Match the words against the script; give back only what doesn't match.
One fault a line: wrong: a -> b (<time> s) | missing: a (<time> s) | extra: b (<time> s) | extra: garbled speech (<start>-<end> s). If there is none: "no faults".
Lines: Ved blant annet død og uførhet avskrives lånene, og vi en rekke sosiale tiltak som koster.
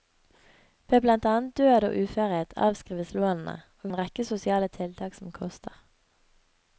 no faults